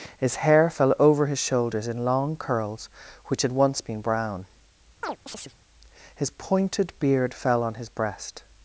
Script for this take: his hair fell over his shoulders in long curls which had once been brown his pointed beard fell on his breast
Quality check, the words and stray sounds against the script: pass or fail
fail